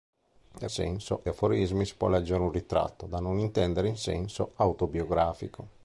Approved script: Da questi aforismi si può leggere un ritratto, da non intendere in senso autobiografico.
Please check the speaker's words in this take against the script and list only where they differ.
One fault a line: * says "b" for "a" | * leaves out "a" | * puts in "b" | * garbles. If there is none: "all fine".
* says "senso" for "questi"